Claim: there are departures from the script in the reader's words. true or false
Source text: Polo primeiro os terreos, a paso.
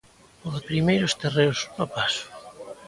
false